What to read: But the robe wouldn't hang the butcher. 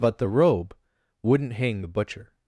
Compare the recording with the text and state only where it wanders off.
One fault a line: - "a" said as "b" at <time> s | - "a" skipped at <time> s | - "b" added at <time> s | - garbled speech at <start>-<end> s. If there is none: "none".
none